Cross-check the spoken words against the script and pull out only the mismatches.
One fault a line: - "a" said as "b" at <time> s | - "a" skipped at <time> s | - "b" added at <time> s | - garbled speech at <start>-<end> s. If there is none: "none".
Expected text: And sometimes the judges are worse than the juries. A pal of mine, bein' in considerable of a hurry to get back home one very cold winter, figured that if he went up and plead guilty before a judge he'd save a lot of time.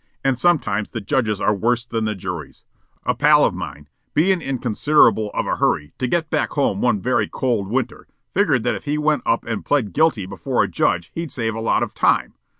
none